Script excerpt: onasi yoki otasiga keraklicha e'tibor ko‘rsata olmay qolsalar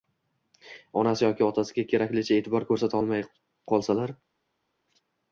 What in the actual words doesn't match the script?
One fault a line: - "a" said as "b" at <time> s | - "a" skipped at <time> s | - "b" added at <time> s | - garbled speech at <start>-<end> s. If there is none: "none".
none